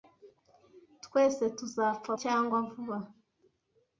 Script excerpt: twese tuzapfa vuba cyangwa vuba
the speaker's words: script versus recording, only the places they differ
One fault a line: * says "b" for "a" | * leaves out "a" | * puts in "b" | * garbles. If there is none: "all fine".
* leaves out "vuba"